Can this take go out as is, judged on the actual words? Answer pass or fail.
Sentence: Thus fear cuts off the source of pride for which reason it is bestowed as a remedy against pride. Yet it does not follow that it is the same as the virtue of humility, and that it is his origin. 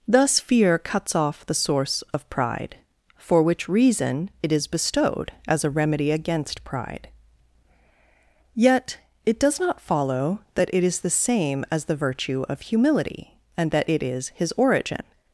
pass